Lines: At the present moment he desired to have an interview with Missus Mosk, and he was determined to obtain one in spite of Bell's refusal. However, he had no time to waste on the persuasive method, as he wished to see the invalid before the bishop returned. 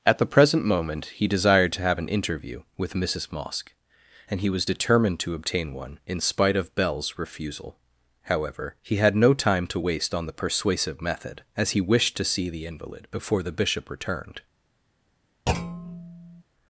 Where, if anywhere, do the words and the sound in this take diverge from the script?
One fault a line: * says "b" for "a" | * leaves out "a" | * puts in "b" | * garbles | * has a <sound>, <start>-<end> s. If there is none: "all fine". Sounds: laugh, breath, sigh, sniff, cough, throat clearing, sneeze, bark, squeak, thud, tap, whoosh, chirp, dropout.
* has a thud, 15.5-16.4 s